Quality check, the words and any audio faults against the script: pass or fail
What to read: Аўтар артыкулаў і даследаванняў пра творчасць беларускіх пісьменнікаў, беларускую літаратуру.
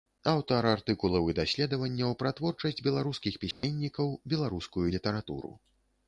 fail